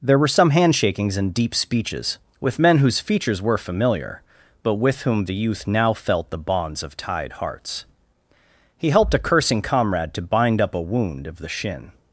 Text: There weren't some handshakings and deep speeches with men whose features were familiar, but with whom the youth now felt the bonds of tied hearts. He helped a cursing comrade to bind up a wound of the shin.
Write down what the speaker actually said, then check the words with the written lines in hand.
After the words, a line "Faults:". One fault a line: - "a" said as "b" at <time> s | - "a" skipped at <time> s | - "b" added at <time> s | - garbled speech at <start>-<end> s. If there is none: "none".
There were some handshakings and deep speeches with men whose features were familiar, but with whom the youth now felt the bonds of tied hearts. He helped a cursing comrade to bind up a wound of the shin.
Faults:
- "weren't" said as "were" at 0.2 s